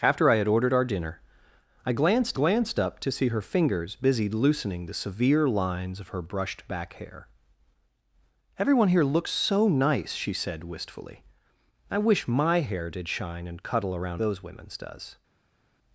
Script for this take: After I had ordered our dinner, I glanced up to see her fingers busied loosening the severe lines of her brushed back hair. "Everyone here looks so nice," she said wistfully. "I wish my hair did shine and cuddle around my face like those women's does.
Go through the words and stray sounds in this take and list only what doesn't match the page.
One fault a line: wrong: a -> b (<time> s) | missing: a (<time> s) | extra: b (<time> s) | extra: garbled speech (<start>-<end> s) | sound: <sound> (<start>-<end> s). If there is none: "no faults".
extra: glanced (2.3 s)
missing: my face like (14.2 s)